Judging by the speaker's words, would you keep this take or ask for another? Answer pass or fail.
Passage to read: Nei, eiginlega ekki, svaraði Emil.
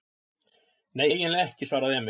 pass